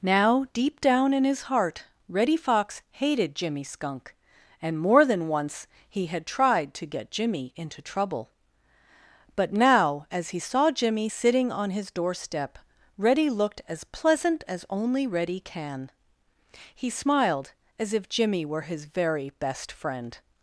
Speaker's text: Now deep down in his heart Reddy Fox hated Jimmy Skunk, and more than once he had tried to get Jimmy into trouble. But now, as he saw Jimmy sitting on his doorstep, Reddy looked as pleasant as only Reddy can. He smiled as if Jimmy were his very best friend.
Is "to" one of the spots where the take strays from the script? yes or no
no